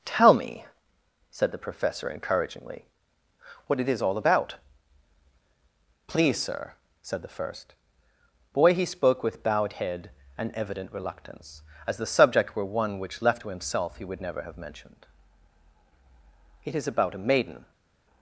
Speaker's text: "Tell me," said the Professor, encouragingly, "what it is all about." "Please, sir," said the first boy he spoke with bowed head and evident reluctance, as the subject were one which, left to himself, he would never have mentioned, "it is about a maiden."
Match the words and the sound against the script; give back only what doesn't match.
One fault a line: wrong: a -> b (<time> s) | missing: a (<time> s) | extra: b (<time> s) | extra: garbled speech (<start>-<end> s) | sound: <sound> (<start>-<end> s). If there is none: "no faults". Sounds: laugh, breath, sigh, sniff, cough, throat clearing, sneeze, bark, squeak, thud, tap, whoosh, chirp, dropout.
no faults